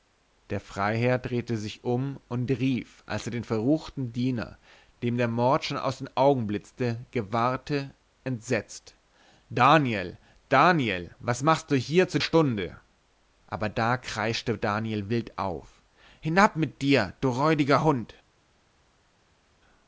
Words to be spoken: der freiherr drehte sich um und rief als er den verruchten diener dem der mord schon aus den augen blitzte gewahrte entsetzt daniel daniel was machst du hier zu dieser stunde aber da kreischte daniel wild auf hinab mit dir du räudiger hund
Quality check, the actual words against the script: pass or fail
fail